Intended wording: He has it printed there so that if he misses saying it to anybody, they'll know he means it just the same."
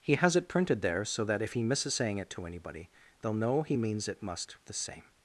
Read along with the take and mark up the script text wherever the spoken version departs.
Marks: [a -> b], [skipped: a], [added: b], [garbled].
He has it printed there so that if he misses saying it to anybody, they'll know he means it [just -> must] the same."